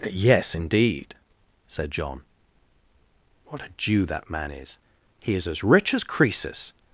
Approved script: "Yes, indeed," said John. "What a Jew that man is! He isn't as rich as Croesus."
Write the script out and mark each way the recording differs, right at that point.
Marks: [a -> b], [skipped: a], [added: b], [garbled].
"Yes, indeed," said John. "What a Jew that man is! He [isn't -> is] as rich as Croesus."